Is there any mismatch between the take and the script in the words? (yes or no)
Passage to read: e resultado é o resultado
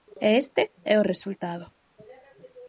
yes